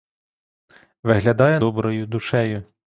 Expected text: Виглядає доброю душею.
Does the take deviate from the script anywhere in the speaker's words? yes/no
no